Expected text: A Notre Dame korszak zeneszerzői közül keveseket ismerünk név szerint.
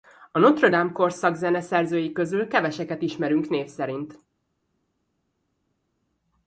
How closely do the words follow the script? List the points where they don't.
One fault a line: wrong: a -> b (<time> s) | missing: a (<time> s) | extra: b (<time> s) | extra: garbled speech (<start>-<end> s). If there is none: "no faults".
no faults